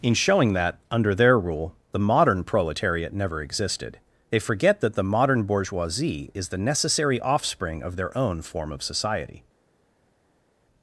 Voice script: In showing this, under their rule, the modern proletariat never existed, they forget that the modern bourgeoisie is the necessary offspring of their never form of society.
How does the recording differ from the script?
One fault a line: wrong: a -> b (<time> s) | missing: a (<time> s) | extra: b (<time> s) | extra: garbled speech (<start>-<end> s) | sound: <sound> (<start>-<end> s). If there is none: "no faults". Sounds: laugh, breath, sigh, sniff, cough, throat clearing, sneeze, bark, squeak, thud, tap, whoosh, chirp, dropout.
wrong: this -> that (0.5 s)
wrong: never -> own (8.2 s)